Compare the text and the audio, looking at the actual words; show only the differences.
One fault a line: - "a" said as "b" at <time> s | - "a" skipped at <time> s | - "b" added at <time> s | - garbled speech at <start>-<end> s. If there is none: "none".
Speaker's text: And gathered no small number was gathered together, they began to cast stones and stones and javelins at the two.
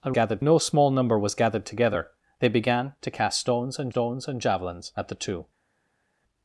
none